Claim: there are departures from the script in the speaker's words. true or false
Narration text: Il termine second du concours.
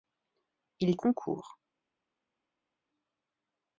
true